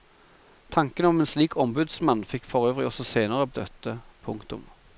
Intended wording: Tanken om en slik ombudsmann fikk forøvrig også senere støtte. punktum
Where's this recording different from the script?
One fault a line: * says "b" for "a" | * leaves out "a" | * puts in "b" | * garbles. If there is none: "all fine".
all fine